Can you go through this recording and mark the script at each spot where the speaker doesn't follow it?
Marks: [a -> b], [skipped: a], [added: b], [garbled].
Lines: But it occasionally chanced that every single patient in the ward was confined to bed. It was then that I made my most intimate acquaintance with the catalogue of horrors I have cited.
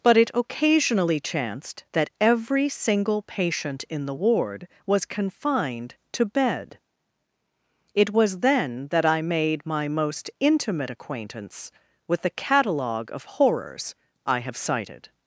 But it occasionally chanced that every single patient in the ward was confined to bed. It was then that I made my most intimate acquaintance with the catalogue of horrors I have cited.